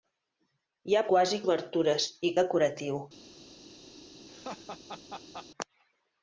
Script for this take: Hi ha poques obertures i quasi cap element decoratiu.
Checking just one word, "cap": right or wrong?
wrong